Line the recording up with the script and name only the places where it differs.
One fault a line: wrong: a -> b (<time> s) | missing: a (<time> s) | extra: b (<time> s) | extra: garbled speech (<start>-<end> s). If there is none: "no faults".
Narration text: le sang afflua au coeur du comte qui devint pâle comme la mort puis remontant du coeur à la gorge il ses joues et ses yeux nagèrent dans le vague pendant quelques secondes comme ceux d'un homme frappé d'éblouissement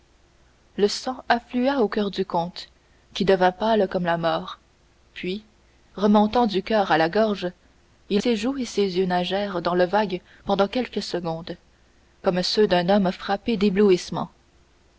no faults